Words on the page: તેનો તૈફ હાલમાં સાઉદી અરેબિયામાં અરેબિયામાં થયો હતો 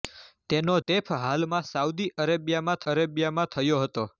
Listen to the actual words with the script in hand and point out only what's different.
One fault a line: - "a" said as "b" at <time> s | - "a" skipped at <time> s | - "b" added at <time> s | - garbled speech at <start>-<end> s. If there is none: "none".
none